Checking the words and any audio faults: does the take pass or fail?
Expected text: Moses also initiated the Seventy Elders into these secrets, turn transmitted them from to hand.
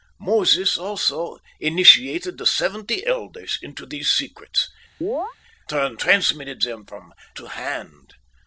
fail